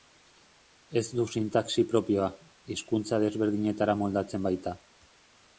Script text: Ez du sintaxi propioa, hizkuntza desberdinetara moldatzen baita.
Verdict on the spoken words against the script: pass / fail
pass